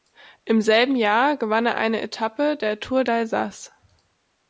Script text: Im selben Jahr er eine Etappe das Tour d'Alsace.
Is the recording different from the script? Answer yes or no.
yes